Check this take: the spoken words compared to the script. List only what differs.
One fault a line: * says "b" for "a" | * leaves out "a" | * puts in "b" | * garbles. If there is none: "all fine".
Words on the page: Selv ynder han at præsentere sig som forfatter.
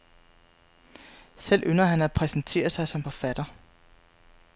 all fine